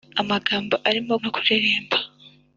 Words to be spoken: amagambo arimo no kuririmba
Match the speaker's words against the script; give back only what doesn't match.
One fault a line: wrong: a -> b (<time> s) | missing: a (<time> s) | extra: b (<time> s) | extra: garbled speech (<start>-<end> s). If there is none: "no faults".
no faults